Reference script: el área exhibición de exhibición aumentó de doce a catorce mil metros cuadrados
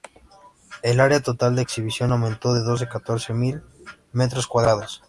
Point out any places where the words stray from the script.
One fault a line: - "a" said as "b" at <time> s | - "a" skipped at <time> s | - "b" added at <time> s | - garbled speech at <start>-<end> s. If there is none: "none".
- "exhibición" said as "total" at 1.2 s